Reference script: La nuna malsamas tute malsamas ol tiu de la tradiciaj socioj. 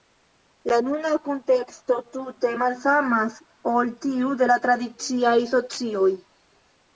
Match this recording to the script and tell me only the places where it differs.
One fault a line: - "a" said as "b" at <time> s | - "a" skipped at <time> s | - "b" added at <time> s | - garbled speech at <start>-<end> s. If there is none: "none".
- "malsamas" said as "kunteksto" at 1.3 s